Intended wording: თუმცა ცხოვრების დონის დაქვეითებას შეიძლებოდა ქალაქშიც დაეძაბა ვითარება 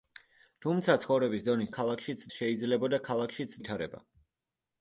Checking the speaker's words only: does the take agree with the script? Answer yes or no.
no